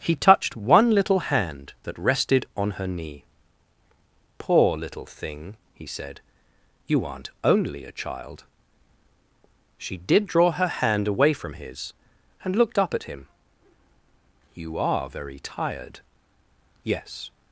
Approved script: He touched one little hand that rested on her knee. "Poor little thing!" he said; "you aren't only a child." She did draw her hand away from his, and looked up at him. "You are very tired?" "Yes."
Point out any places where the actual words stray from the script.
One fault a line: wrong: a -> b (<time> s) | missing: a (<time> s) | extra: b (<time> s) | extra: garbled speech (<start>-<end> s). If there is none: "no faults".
no faults